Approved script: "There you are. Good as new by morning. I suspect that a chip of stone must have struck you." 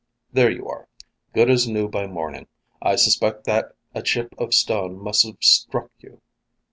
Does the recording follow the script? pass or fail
pass